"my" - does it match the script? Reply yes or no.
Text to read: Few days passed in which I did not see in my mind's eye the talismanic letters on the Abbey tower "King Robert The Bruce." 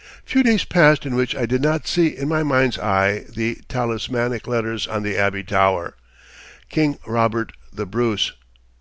yes